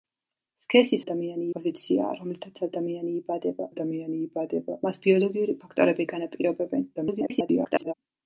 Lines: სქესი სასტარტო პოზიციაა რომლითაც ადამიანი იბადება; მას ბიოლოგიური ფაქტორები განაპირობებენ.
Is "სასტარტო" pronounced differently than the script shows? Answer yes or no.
yes